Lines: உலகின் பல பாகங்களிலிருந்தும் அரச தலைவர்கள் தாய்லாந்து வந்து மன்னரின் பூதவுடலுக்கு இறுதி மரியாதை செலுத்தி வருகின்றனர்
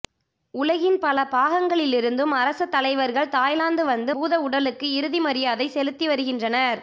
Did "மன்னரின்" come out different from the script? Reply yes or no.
yes